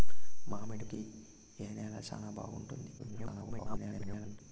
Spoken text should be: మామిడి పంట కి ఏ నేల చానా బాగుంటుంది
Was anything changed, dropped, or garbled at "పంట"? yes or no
yes